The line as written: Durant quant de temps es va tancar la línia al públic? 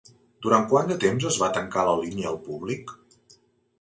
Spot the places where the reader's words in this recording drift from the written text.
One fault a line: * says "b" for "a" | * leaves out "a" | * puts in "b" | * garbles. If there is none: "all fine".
all fine